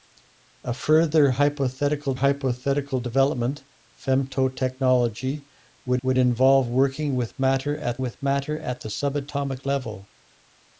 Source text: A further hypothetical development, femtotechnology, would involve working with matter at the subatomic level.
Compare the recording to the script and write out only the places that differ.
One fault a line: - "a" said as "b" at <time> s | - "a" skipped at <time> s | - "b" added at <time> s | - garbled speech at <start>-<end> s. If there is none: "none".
- "hypothetical" added at 2.1 s
- "would" added at 6.0 s
- "with matter at" added at 8.0 s